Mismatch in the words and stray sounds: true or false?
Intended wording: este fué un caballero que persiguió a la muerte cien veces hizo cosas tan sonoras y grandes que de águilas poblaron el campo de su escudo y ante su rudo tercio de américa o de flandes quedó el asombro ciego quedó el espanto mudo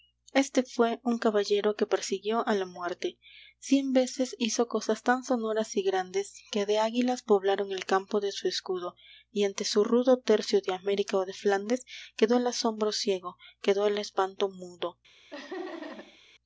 true